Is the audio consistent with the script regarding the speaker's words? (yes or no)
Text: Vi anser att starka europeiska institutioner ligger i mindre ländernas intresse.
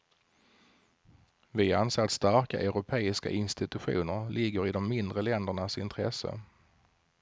no